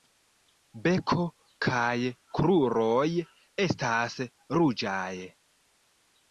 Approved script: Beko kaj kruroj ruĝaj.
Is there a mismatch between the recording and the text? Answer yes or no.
yes